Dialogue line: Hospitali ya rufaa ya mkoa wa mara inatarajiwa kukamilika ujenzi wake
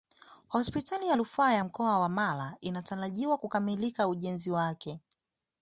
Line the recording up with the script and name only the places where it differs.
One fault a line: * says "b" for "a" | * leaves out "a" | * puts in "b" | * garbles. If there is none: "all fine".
all fine